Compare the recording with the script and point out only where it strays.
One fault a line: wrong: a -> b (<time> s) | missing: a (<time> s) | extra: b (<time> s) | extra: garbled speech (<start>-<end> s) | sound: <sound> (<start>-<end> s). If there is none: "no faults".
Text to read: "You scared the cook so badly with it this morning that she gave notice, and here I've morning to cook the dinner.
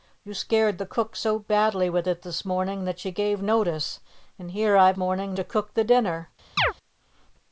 sound: chirp (6.6-6.7 s)